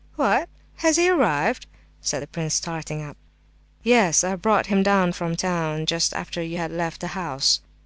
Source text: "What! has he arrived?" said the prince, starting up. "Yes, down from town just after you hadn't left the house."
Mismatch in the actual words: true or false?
true